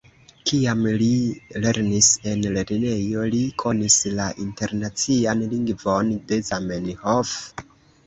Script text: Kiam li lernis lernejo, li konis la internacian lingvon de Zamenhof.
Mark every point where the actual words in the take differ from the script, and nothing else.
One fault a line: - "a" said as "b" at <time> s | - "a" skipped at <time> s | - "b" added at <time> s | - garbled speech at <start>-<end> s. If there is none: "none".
- "en" added at 2.3 s